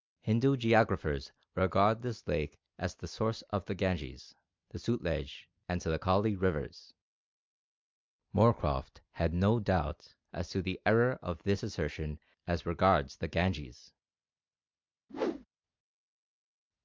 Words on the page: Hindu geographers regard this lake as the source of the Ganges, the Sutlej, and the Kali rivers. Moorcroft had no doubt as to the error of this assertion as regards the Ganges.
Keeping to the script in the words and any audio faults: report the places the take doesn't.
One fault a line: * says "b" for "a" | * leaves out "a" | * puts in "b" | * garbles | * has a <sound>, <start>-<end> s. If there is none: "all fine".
* has a whoosh, 15.1-15.5 s